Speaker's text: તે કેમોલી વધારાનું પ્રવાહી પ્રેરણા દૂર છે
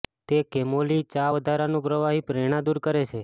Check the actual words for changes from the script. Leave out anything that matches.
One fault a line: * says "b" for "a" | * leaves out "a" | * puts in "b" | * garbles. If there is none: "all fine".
* puts in "ચા"
* puts in "કરે"